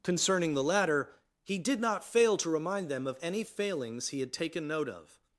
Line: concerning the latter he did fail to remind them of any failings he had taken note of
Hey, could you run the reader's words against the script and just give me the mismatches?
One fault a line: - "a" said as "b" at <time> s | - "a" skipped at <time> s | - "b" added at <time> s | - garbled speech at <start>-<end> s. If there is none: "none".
- "not" added at 1.8 s